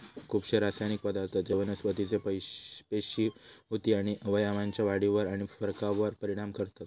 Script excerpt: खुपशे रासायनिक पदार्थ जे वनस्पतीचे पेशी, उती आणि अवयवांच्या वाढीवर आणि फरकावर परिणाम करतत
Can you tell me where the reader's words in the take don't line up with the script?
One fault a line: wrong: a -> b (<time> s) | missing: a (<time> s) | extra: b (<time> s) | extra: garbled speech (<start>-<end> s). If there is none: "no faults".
no faults